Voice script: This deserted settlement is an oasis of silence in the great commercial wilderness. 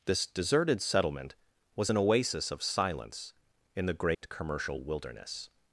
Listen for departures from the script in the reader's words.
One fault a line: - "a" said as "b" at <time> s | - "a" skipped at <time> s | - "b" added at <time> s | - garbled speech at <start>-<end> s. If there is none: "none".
- "is" said as "was" at 1.8 s